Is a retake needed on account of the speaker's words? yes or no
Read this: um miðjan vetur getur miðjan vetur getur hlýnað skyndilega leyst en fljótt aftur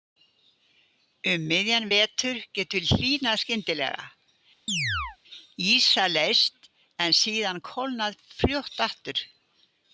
yes